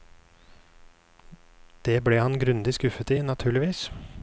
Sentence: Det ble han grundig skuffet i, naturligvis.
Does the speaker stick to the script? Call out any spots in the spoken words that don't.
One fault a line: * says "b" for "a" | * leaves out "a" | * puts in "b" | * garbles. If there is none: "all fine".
all fine